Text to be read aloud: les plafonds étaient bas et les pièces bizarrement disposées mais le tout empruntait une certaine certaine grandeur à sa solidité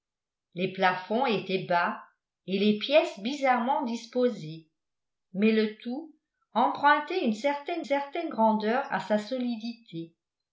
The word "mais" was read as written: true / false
true